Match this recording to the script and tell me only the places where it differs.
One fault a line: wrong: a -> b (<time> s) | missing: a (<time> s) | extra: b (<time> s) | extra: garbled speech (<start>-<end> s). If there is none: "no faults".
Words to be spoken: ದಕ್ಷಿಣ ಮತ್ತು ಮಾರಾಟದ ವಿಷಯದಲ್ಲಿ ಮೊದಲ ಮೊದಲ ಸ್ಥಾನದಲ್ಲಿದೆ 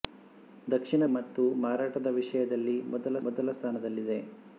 no faults